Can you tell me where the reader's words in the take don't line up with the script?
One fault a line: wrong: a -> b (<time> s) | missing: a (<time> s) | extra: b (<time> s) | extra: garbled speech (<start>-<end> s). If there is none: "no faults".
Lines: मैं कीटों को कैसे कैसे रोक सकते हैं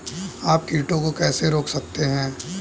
wrong: मैं -> आप (0.4 s)
missing: कैसे (1.5 s)